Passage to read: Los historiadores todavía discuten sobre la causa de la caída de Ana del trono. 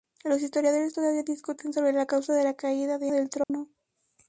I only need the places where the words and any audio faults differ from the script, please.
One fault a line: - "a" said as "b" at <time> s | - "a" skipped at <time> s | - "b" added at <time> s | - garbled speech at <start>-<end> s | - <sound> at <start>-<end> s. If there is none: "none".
- "Ana" skipped at 3.1 s
- dropout at 3.4-3.5 s